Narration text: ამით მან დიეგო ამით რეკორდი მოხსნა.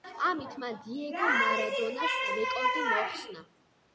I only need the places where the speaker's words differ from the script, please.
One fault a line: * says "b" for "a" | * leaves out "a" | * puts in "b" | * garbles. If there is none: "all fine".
* says "მარადონას" for "ამით"